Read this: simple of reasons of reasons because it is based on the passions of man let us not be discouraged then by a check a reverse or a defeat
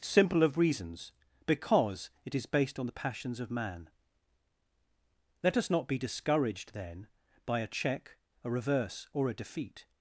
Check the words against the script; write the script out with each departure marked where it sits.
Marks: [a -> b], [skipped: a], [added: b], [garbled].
simple of reasons [skipped: of reasons] because it is based on the passions of man let us not be discouraged then by a check a reverse or a defeat